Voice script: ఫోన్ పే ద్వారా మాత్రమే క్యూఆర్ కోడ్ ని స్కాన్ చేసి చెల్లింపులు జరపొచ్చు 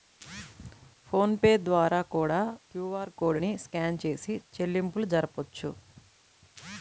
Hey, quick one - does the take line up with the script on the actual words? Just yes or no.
no